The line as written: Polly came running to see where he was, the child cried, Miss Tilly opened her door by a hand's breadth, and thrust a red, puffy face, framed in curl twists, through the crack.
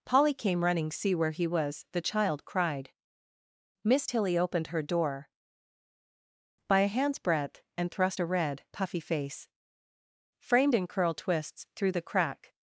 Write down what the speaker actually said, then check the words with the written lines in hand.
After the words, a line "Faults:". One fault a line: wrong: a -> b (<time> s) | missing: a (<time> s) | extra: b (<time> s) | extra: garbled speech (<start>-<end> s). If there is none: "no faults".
Polly came running see where he was, the child cried, Miss Tilly opened her door by a hand's breadth, and thrust a red, puffy face, framed in curl twists, through the crack.
Faults:
missing: to (0.9 s)